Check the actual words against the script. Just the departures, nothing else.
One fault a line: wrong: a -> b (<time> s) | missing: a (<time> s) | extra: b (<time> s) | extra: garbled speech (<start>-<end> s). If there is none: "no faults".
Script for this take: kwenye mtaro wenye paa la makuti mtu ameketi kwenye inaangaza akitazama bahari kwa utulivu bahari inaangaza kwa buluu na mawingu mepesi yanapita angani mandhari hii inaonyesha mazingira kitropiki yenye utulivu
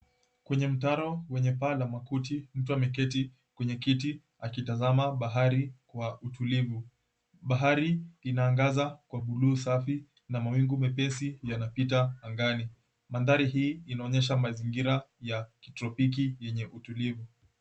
wrong: inaangaza -> kiti (3.8 s)
extra: safi (9.6 s)
extra: ya (15.2 s)